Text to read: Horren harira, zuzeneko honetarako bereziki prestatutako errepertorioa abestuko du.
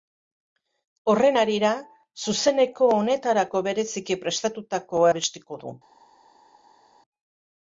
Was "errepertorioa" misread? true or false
true